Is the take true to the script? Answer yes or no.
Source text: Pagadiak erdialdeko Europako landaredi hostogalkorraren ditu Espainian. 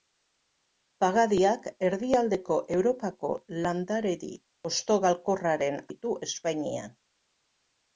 yes